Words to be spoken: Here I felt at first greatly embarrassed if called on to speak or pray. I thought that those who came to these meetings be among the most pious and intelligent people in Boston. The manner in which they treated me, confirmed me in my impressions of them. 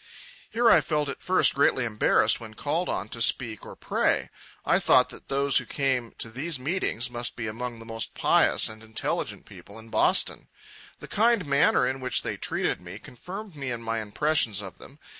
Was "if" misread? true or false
true